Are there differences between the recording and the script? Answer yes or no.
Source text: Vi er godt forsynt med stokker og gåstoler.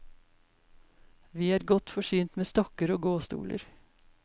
no